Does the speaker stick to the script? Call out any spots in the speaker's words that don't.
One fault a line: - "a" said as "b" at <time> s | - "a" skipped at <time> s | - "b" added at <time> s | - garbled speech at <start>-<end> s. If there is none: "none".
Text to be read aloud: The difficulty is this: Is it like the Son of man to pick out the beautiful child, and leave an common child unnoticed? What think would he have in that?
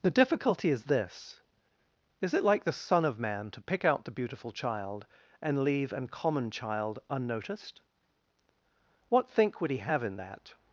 none